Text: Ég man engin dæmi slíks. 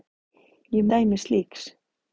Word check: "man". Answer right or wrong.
wrong